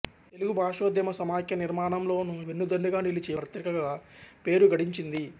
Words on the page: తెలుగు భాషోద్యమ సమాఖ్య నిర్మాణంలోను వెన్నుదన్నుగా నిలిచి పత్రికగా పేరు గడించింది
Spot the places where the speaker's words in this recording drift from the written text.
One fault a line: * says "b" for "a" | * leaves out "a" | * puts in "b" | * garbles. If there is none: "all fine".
all fine